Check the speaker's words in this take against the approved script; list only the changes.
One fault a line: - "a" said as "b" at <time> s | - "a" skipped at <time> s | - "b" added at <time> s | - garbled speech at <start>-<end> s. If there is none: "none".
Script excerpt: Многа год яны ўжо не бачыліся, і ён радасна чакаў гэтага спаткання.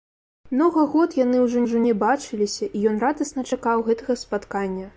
- "ўжо" added at 1.6 s